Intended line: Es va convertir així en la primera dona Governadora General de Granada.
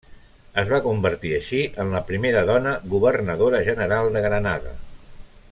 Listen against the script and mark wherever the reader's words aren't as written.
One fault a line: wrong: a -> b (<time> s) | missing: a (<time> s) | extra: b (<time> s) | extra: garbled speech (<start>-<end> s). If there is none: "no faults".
no faults